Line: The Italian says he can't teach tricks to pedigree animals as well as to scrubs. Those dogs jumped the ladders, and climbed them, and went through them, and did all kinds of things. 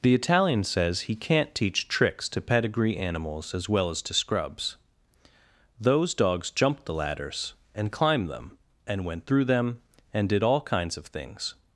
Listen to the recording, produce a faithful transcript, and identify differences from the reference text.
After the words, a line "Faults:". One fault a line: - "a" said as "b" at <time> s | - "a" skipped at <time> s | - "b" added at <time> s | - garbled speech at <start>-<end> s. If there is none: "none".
The Italian says he can't teach tricks to pedigree animals as well as to scrubs. Those dogs jumped the ladders, and climbed them, and went through them, and did all kinds of things.
Faults:
none